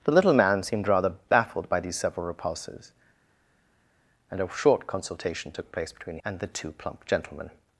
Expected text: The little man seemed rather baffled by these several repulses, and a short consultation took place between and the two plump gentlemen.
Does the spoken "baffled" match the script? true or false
true